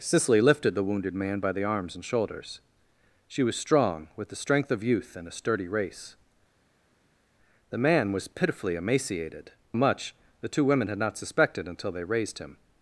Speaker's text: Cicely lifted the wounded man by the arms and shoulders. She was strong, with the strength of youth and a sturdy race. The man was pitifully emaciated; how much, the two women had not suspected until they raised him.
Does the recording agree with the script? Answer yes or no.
no